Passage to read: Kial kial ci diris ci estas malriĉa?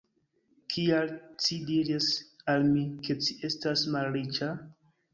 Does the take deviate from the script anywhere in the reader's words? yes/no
yes